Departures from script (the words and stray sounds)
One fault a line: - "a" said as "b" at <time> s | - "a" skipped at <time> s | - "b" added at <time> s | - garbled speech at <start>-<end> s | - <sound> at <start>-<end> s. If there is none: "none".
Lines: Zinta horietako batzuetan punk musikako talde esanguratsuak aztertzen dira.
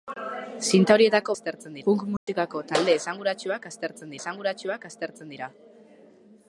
- "batzuetan" said as "aztertzen" at 1.4 s
- dropout at 2.2-2.3 s
- "esanguratsuak aztertzen" added at 4.2 s